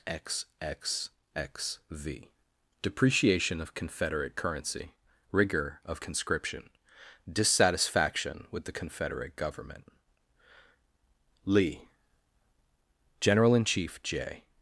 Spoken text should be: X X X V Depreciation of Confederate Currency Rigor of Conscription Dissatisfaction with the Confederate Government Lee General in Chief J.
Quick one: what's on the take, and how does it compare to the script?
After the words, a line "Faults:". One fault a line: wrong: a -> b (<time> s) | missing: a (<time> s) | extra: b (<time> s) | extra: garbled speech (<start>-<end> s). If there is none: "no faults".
X X X V Depreciation of Confederate Currency Rigor of Conscription Dissatisfaction with the Confederate Government Lee General in Chief J.
Faults:
no faults